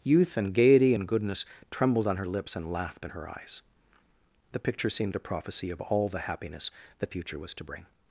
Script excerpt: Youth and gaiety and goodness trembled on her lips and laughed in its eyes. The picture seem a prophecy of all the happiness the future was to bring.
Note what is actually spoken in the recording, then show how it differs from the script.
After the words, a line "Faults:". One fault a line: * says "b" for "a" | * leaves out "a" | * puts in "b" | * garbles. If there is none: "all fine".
Youth and gaiety and goodness trembled on her lips and laughed in her eyes. The picture seemed a prophecy of all the happiness the future was to bring.
Faults:
* says "her" for "its"
* says "seemed" for "seem"